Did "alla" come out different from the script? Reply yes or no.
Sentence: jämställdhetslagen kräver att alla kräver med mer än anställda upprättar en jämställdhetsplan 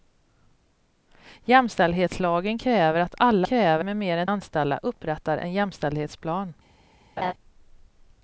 no